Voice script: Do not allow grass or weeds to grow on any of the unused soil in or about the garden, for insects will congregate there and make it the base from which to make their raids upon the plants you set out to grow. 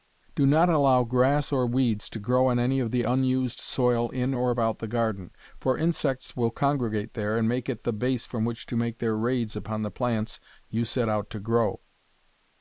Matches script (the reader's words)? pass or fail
pass